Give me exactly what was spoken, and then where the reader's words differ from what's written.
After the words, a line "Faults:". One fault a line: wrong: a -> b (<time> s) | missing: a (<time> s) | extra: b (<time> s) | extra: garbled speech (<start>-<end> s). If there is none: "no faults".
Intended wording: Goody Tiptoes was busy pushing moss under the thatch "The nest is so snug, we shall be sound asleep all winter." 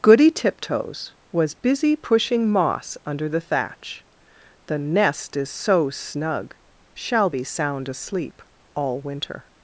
Goody Tiptoes was busy pushing moss under the thatch "The nest is so snug, shall be sound asleep all winter."
Faults:
missing: we (6.5 s)